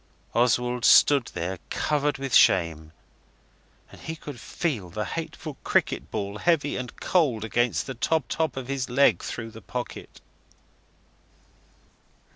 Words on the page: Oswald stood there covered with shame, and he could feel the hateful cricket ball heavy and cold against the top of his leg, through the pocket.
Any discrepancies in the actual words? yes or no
yes